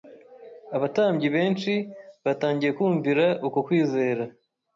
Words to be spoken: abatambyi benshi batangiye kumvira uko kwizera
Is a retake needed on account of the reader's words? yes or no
no